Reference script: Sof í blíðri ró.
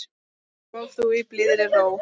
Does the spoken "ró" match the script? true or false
true